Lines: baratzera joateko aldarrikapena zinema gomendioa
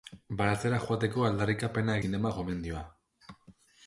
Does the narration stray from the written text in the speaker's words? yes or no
no